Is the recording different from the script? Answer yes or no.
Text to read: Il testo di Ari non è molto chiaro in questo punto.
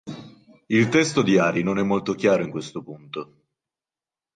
no